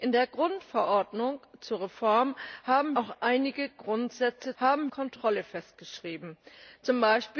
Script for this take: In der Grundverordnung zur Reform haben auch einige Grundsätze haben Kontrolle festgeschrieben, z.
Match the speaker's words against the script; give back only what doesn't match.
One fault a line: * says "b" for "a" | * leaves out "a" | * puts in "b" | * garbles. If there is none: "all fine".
all fine